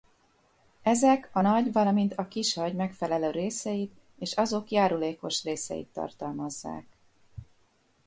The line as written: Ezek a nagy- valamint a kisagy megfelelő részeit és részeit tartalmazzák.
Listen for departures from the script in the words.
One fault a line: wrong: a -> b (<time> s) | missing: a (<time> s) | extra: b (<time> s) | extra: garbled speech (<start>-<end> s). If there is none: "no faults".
extra: azok járulékos (4.3 s)